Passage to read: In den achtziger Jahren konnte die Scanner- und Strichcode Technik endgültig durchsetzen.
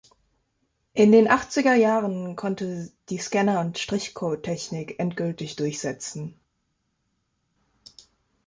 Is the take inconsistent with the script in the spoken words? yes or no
no